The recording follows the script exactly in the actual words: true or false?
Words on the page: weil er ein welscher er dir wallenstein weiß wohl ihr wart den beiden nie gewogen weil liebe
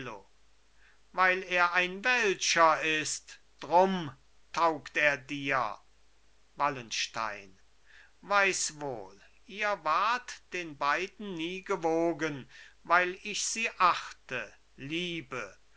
false